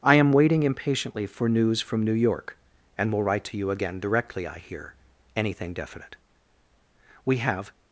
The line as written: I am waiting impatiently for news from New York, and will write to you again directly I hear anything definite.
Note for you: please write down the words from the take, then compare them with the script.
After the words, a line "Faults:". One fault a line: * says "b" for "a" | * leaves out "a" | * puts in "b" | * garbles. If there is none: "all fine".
I am waiting impatiently for news from New York, and will write to you again directly I hear anything definite. We have
Faults:
* puts in "We have"